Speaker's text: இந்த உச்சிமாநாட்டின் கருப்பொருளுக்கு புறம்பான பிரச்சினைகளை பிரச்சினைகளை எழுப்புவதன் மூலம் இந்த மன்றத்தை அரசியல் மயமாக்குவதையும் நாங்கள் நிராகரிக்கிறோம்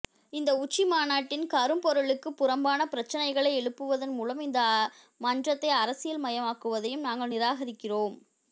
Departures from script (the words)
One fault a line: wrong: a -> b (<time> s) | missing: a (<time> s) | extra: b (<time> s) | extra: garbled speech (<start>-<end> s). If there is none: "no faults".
missing: பிரச்சினைகளை (3.5 s)